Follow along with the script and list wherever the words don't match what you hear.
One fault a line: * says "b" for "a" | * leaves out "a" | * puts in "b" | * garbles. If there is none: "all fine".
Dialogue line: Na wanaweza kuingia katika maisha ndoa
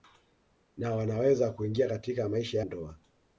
all fine